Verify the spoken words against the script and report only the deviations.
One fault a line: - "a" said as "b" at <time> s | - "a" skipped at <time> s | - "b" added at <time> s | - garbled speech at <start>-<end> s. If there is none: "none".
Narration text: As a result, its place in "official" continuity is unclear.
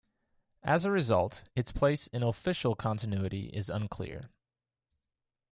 none